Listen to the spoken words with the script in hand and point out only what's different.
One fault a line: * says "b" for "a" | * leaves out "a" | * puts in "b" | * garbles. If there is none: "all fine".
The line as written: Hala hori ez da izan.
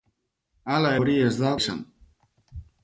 all fine